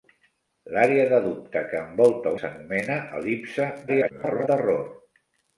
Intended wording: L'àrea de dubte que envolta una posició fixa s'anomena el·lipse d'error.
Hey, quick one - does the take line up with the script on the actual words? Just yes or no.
no